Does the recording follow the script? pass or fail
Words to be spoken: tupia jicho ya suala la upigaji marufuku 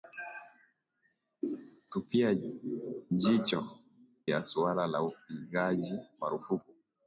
pass